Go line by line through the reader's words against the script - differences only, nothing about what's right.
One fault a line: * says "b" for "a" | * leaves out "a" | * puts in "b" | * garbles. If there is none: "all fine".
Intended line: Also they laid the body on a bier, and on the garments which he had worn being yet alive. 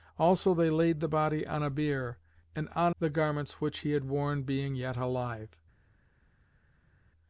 all fine